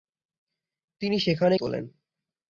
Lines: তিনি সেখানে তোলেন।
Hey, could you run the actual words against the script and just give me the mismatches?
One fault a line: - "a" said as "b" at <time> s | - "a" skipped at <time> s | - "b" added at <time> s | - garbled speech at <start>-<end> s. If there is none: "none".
none